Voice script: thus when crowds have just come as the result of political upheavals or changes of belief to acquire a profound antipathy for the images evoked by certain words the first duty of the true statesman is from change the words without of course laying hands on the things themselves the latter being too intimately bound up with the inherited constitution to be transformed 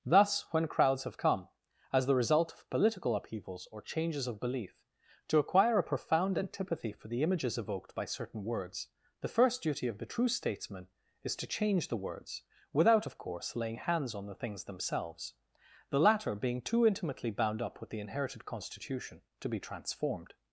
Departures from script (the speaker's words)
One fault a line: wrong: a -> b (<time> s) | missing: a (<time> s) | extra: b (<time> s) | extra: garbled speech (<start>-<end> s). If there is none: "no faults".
missing: just (1.2 s)
wrong: from -> to (11.4 s)